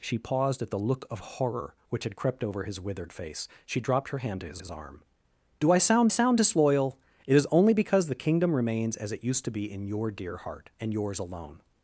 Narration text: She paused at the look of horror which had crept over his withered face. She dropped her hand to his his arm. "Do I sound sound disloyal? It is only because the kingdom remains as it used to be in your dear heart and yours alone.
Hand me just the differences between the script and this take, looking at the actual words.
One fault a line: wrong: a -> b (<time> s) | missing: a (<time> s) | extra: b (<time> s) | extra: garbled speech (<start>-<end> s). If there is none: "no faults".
no faults